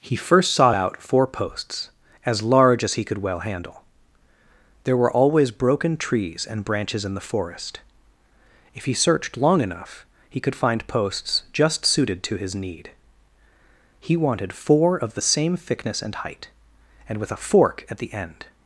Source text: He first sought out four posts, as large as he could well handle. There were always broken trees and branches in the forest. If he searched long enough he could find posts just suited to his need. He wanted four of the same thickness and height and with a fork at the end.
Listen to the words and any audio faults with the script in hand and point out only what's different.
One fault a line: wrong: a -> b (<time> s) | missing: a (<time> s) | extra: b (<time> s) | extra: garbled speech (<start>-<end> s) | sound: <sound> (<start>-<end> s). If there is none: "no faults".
no faults